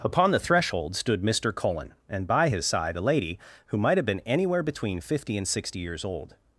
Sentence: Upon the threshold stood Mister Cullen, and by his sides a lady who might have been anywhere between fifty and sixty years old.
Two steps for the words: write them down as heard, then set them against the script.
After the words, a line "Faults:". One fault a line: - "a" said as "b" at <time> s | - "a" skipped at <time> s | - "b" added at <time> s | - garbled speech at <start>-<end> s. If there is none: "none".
Upon the threshold stood Mister Cullen, and by his side a lady who might have been anywhere between fifty and sixty years old.
Faults:
- "sides" said as "side" at 2.7 s